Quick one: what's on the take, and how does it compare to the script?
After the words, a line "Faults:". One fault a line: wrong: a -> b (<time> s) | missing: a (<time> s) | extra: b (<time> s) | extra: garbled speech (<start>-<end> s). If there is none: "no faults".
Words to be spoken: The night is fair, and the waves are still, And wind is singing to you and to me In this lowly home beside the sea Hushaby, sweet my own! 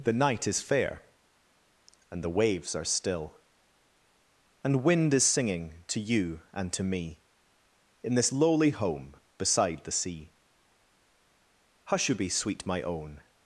The night is fair, and the waves are still, And wind is singing to you and to me In this lowly home beside the sea Hushaby, sweet my own!
Faults:
no faults